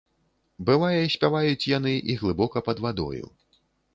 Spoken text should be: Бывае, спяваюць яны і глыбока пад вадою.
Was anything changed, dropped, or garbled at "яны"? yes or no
no